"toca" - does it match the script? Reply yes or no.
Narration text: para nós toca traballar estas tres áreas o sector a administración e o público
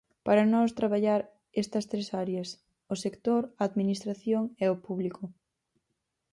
no